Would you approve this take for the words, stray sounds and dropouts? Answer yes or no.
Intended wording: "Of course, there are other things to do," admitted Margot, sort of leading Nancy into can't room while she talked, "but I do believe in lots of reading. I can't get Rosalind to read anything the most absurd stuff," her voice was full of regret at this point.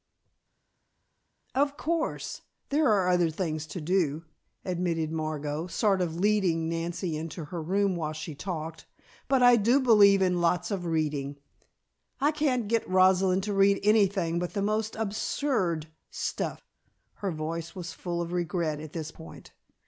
no